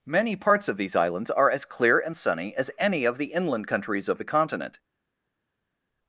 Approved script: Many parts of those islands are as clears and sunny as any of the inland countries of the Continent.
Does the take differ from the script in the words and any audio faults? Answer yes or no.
yes